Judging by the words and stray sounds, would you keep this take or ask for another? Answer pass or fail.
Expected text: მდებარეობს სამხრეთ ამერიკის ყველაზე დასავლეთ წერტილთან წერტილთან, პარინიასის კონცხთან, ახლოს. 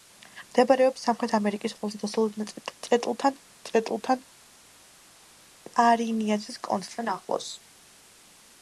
pass